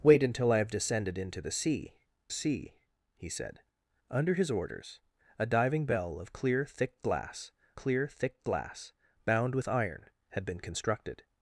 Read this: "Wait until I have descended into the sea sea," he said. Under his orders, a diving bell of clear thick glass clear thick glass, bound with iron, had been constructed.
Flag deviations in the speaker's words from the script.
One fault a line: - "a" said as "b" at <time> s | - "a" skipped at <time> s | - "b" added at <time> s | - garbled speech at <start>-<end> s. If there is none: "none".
none